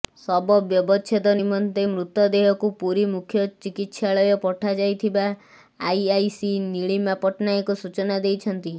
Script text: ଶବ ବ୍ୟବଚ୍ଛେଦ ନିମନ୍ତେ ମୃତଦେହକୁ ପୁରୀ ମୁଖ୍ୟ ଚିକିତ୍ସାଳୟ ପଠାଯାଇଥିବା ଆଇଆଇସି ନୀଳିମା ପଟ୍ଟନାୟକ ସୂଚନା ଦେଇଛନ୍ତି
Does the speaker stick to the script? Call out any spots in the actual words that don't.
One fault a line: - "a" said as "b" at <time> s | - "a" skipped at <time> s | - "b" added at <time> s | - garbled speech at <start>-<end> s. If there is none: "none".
none